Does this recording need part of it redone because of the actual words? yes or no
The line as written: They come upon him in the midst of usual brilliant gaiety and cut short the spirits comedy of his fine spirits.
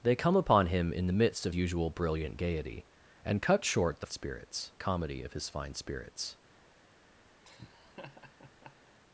no